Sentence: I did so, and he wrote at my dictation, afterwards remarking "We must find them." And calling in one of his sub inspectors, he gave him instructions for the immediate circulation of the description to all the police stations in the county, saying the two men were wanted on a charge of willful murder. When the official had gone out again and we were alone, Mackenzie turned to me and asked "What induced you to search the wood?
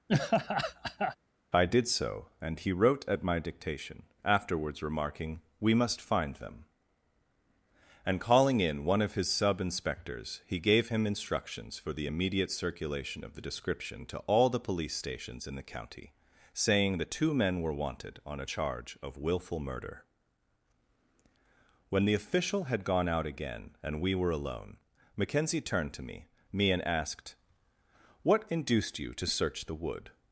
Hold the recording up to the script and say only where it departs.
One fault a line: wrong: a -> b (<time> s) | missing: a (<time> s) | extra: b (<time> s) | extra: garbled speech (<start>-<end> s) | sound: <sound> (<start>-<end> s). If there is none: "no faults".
sound: laugh (0.1-1.2 s)
extra: me (26.5 s)